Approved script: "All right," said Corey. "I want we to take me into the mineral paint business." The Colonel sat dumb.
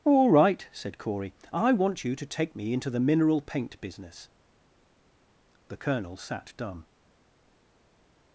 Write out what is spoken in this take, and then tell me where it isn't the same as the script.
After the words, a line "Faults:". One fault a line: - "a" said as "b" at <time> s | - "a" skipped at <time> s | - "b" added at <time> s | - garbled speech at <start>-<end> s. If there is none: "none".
"All right," said Corey. "I want you to take me into the mineral paint business." The Colonel sat dumb.
Faults:
- "we" said as "you" at 2.0 s